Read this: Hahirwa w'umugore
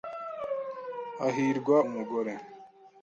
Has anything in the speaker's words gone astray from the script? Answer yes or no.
no